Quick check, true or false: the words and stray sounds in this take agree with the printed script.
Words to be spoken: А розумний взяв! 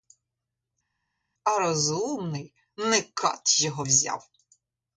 false